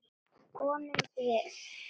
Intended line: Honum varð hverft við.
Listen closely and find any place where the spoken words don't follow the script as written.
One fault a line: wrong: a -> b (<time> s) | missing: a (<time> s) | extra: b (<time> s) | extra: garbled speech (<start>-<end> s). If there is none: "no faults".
missing: varð hverft (1.0 s)